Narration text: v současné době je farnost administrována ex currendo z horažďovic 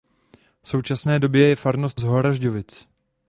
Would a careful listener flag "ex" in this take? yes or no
yes